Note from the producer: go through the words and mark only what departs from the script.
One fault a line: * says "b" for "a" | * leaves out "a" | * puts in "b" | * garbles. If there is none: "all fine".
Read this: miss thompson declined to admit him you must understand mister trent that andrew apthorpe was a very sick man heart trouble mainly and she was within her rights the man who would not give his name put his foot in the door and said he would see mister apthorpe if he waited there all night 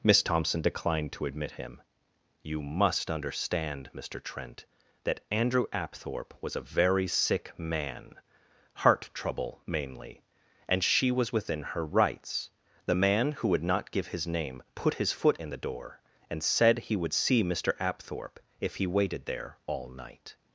all fine